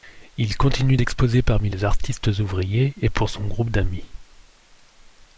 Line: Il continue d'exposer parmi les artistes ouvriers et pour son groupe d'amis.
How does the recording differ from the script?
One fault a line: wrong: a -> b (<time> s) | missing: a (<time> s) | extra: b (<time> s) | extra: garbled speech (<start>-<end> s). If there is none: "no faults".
no faults